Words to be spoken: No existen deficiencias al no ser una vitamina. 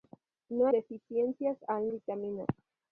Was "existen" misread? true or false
true